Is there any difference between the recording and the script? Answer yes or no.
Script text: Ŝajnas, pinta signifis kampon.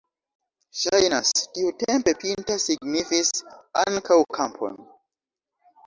yes